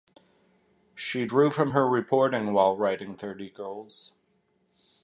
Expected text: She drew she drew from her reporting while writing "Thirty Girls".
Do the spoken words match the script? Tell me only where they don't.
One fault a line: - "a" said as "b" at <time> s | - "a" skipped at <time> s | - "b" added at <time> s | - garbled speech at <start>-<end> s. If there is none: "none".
- "she drew" skipped at 1.5 s